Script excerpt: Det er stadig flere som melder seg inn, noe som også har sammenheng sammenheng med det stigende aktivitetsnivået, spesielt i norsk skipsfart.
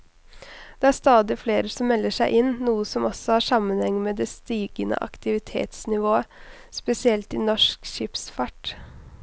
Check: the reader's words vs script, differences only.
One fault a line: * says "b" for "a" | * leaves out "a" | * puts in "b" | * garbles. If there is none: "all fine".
* leaves out "sammenheng"